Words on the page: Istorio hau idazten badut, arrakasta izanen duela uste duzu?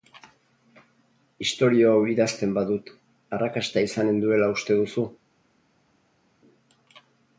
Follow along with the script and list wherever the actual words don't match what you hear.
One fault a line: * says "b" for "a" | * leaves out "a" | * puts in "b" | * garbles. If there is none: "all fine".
all fine